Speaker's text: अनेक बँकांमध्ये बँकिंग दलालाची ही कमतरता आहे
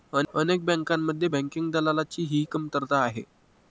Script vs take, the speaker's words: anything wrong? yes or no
no